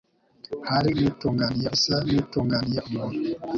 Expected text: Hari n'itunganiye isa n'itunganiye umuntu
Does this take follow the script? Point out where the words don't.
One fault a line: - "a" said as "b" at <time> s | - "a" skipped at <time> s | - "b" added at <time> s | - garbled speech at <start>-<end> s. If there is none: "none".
none